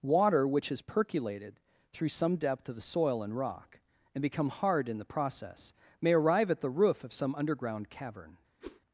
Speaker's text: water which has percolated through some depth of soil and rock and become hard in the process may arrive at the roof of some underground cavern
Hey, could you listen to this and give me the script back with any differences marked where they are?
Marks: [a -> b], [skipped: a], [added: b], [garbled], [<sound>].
water which has percolated through some depth of [added: the] soil and rock and become hard in the process may arrive at the roof of some underground cavern [whoosh]